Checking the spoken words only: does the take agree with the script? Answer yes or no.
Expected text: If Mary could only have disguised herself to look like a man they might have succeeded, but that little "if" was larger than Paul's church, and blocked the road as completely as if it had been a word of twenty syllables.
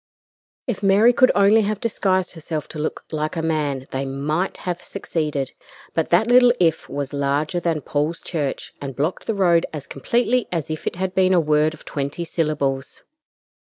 yes